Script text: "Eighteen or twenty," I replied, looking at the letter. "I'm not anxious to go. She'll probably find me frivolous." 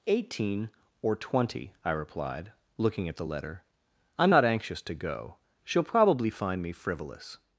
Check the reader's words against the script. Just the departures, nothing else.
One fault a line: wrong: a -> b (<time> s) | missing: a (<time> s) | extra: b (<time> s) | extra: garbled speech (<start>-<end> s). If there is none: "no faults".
no faults